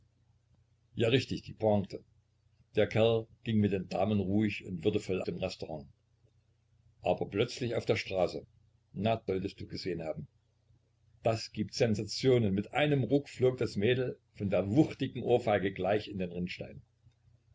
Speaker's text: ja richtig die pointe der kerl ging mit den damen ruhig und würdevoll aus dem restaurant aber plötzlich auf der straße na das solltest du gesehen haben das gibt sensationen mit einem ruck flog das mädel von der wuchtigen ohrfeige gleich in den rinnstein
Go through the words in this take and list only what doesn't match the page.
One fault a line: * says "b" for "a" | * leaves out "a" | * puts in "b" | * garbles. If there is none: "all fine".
* leaves out "aus"
* leaves out "das"